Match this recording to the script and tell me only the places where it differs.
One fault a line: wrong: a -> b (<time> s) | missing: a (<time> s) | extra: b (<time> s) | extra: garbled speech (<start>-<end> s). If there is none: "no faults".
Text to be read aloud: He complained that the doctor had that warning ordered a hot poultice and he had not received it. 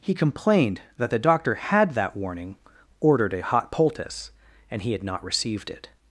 no faults